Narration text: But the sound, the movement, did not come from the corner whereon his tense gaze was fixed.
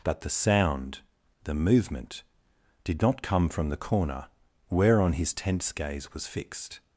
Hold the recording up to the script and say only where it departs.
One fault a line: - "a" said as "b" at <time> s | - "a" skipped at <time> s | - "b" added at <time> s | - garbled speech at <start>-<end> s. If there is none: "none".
none